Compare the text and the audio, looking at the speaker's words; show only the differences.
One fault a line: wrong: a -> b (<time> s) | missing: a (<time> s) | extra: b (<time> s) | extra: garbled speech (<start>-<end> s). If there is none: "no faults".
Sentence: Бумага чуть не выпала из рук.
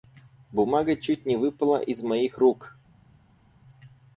extra: моих (2.0 s)